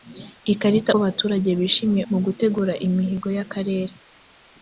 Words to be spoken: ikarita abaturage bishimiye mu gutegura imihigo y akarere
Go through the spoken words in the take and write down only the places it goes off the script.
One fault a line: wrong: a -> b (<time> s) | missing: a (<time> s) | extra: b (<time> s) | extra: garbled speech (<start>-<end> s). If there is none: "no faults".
no faults